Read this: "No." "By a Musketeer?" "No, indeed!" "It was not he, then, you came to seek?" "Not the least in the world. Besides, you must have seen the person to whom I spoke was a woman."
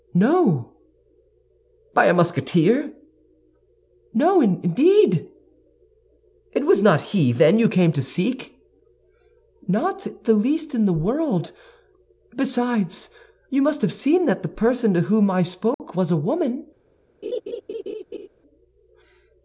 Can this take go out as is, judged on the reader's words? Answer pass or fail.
fail